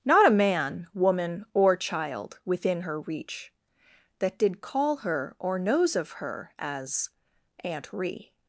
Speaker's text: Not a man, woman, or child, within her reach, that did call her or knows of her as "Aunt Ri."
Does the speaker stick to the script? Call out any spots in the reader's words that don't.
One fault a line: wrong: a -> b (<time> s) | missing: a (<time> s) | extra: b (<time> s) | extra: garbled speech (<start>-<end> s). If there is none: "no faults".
no faults